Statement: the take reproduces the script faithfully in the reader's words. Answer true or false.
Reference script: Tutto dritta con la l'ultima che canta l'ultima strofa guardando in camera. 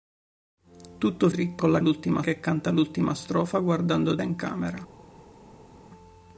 true